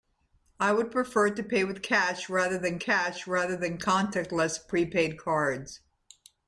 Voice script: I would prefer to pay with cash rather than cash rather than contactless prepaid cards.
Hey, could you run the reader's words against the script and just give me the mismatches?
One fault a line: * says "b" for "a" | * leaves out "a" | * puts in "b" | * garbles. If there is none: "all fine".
all fine